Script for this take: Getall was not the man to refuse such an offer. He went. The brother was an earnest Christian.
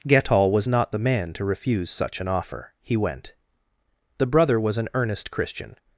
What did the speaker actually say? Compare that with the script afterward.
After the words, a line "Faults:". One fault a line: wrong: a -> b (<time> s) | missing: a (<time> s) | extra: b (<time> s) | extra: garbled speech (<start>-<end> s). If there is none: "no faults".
Getall was not the man to refuse such an offer. He went. The brother was an earnest Christian.
Faults:
no faults